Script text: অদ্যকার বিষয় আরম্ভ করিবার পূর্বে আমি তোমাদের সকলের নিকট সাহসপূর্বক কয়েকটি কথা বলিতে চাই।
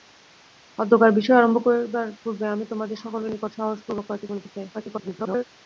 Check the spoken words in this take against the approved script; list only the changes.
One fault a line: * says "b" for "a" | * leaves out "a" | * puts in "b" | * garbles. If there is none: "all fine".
* leaves out "কথা"
* garbles